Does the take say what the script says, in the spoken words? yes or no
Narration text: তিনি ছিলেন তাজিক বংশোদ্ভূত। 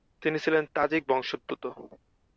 yes